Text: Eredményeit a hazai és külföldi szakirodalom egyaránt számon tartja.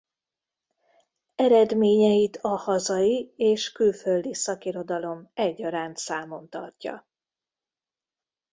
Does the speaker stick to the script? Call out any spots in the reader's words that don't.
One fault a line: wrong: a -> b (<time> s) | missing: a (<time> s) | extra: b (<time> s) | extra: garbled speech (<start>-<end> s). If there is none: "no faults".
no faults